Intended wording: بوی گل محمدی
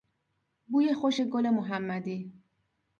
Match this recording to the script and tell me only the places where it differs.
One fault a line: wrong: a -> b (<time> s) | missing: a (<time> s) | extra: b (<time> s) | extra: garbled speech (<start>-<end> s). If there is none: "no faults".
extra: خوش (0.9 s)